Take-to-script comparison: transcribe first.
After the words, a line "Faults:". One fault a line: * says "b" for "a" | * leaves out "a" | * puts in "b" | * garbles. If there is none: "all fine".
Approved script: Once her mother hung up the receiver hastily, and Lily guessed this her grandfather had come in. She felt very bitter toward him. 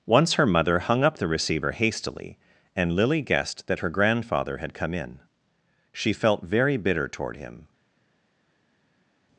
Once her mother hung up the receiver hastily, and Lily guessed that her grandfather had come in. She felt very bitter toward him.
Faults:
* says "that" for "this"